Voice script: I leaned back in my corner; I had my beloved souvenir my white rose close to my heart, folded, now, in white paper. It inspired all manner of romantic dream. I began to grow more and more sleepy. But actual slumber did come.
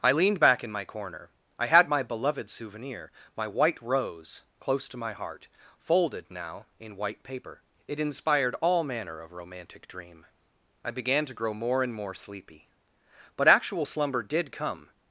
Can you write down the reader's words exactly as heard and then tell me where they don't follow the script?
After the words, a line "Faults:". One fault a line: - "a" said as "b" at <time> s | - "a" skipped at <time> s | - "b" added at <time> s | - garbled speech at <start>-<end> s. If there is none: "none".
I leaned back in my corner; I had my beloved souvenir my white rose close to my heart, folded, now, in white paper. It inspired all manner of romantic dream. I began to grow more and more sleepy. But actual slumber did come.
Faults:
none